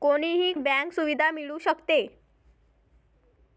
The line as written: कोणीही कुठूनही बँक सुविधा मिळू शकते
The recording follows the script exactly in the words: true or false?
false